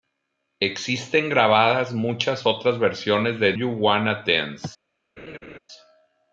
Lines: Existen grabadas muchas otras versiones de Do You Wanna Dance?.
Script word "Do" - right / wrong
wrong